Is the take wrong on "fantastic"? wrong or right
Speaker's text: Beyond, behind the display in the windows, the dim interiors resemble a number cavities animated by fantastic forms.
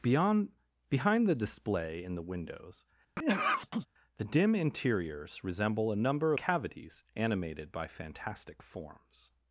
right